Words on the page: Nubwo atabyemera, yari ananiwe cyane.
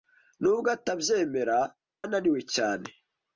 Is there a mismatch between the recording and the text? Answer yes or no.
yes